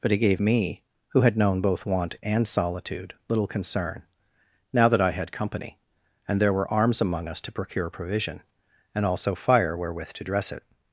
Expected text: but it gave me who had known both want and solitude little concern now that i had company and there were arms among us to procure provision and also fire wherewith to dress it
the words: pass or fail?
pass